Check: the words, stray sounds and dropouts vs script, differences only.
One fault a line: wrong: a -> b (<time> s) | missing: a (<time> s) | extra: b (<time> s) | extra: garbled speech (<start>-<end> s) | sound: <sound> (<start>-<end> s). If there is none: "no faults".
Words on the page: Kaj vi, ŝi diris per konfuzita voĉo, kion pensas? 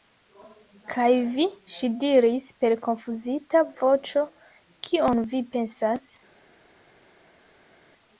extra: vi (5.3 s)